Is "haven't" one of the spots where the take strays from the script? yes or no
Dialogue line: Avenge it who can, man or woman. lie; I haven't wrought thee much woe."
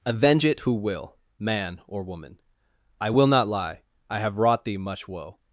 yes